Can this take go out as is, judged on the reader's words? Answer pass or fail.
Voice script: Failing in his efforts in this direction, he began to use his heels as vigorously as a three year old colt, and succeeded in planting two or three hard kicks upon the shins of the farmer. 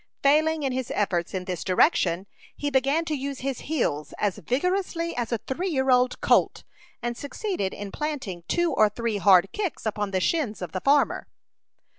pass